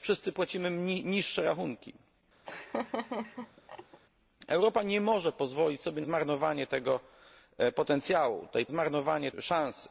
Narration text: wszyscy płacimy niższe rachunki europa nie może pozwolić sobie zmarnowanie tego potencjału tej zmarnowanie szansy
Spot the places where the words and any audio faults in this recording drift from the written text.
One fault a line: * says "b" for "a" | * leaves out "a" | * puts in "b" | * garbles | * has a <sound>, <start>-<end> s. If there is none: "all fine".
* has a laugh, 2.4-4.0 s